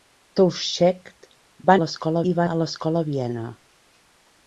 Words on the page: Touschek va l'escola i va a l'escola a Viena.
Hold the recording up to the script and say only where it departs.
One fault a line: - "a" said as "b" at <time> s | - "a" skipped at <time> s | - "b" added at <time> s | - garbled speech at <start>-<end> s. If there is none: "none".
none